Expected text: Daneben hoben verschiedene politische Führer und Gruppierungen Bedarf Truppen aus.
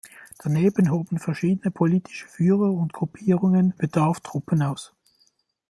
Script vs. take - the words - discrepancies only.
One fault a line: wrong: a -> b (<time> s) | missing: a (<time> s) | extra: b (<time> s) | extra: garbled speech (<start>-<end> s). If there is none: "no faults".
no faults